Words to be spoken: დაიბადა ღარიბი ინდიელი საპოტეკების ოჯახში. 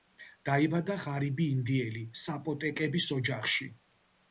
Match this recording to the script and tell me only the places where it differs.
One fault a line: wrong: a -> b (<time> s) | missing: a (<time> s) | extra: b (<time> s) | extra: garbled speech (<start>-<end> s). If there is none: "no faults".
no faults